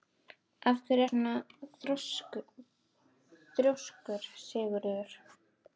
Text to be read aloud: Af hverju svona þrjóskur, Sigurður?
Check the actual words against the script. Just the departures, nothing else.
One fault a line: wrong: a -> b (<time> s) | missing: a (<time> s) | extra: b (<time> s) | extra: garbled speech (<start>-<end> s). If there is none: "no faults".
no faults